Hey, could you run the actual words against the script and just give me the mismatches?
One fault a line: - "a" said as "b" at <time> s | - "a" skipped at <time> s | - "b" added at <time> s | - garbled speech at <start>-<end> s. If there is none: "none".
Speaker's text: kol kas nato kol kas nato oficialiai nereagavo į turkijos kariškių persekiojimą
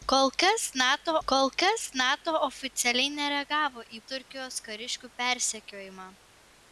none